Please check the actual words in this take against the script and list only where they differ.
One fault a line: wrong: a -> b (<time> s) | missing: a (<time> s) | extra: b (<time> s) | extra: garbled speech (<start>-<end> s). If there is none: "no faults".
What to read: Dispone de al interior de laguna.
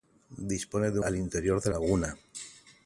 no faults